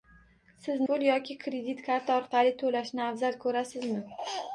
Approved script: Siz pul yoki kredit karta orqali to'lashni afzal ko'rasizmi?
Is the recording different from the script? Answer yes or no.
no